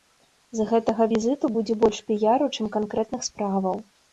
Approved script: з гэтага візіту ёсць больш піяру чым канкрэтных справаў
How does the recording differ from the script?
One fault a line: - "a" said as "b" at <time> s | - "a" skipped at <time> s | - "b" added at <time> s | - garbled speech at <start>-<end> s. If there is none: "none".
- "ёсць" said as "будзе" at 1.6 s